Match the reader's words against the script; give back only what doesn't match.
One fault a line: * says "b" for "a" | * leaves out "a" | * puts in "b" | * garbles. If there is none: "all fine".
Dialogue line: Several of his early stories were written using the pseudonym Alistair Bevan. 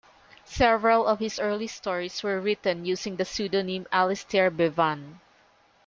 all fine